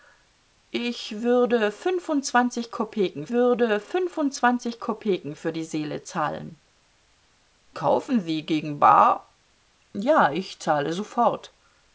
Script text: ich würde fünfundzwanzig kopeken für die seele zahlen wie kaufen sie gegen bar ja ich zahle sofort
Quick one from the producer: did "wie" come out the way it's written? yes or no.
no